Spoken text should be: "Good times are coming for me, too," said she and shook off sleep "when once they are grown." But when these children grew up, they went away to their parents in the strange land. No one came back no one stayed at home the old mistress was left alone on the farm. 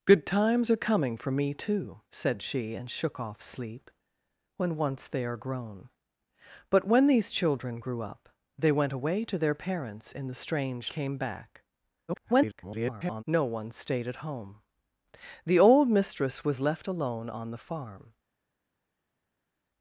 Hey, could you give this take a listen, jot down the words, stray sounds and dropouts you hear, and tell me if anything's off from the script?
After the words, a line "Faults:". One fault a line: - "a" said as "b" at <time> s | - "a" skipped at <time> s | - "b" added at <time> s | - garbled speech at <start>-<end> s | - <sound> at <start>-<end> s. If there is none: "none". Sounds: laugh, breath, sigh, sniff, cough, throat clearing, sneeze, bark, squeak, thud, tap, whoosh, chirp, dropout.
"Good times are coming for me, too," said she and shook off sleep "when once they are grown." But when these children grew up, they went away to their parents in the strange came back [garbled] no one stayed at home the old mistress was left alone on the farm.
Faults:
- "land No one" skipped at 10.9 s
- garbled speech at 12.1-13.2 s